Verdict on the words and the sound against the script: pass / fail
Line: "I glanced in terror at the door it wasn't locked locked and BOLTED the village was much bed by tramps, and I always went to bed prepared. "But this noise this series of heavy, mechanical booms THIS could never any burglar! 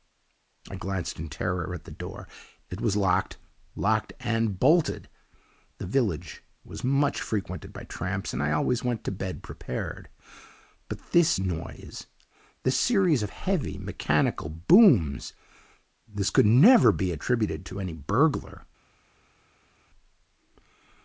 fail